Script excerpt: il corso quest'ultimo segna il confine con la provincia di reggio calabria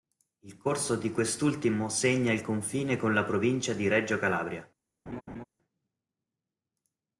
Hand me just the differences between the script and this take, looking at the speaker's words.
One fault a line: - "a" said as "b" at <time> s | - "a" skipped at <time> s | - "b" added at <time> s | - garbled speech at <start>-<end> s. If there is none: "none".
- "di" added at 0.9 s